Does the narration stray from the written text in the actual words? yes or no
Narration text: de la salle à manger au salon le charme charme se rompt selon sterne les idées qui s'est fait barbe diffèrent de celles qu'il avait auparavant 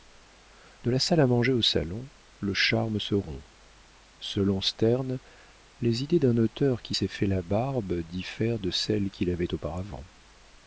yes